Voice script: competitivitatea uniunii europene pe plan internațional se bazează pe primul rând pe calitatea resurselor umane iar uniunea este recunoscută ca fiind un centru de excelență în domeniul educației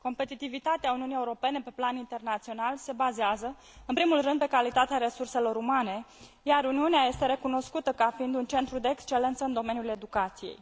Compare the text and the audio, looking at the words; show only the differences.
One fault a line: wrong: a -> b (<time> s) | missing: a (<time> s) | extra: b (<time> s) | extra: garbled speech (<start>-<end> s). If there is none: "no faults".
wrong: pe -> în (3.9 s)